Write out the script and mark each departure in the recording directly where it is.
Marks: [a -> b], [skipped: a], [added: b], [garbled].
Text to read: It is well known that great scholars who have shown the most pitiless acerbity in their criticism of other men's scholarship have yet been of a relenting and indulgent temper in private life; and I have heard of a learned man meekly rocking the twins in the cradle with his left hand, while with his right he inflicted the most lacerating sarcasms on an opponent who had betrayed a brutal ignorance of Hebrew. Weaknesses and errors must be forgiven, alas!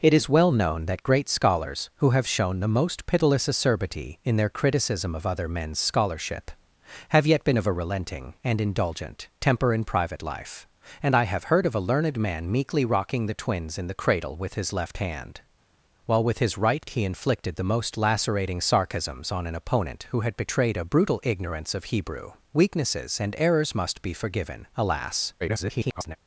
It is well known that great scholars who have shown the most pitiless acerbity in their criticism of other men's scholarship have yet been of a relenting and indulgent temper in private life; and I have heard of a learned man meekly rocking the twins in the cradle with his left hand, while with his right he inflicted the most lacerating sarcasms on an opponent who had betrayed a brutal ignorance of Hebrew. Weaknesses and errors must be forgiven, alas! [garbled]